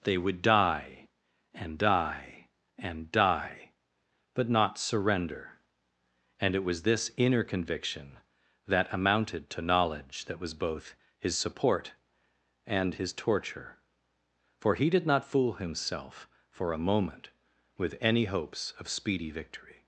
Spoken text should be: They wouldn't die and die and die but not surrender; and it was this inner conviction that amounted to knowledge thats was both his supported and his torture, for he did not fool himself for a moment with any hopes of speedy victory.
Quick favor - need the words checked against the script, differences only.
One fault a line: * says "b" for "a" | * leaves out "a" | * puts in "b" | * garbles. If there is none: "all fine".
* says "would" for "wouldn't"
* says "that" for "thats"
* says "support" for "supported"